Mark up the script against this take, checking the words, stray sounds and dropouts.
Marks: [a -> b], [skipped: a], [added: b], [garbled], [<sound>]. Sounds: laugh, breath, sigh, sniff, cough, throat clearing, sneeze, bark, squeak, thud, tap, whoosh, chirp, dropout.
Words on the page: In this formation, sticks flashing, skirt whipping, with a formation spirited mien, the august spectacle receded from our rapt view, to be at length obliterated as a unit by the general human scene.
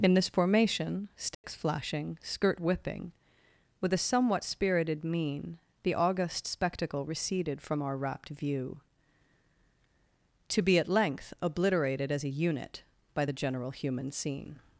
In this formation, sticks [dropout] flashing, skirt whipping, with a [formation -> somewhat] spirited mien, the august spectacle receded from our rapt view, to be at length obliterated as a unit by the general human scene.